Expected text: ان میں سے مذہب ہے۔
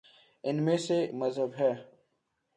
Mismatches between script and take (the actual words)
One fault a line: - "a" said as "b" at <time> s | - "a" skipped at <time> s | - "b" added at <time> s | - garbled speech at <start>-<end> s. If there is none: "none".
none